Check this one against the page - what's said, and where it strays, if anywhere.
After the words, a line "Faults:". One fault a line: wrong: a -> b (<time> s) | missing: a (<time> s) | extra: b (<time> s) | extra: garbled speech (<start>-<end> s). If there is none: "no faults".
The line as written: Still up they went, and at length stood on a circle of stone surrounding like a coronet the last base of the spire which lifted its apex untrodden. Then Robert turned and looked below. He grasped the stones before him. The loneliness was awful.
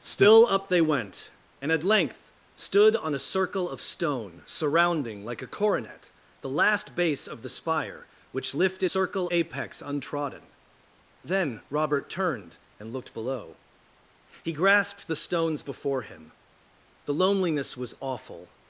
Still up they went, and at length stood on a circle of stone surrounding like a coronet the last base of the spire which lifted circle apex untrodden. Then Robert turned and looked below. He grasped the stones before him. The loneliness was awful.
Faults:
wrong: its -> circle (8.9 s)